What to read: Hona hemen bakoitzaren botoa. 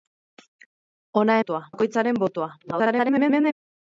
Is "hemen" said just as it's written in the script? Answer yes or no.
no